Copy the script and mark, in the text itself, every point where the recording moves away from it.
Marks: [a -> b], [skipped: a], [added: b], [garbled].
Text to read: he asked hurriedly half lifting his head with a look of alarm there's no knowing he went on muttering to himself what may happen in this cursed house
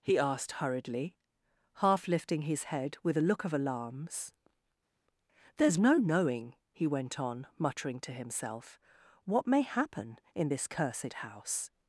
he asked hurriedly half lifting his head with a look of [alarm -> alarms] there's no knowing he went on muttering to himself what may happen in this cursed house